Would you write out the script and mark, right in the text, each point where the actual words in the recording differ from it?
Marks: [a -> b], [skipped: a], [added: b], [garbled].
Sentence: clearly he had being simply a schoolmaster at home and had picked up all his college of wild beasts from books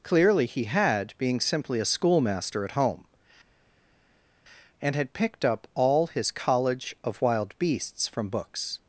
clearly he had being simply a schoolmaster at home and had picked up all his college of wild beasts from books